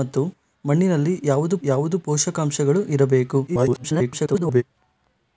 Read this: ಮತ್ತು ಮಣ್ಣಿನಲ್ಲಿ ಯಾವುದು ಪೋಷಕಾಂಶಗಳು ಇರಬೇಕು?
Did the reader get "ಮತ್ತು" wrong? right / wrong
right